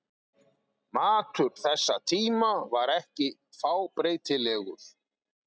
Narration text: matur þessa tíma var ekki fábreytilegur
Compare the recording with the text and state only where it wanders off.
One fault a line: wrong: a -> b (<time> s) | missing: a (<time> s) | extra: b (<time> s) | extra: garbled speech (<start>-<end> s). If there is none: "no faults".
no faults